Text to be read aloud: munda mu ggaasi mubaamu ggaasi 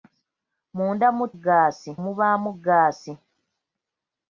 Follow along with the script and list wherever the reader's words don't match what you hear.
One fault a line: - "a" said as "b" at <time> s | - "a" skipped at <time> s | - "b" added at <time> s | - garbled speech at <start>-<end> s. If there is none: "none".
none